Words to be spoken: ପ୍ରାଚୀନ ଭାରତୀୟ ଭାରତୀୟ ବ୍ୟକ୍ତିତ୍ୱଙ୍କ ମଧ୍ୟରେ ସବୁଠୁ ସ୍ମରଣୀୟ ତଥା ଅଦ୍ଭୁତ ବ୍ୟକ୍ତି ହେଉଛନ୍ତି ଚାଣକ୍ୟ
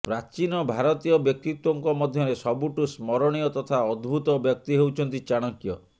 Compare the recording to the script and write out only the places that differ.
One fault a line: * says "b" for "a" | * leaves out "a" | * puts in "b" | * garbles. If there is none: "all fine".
* leaves out "ଭାରତୀୟ"